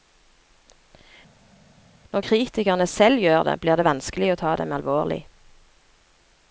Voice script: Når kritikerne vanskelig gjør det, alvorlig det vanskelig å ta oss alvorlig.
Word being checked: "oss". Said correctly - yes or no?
no